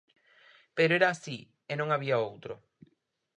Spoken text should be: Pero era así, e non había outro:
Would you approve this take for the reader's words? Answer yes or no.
yes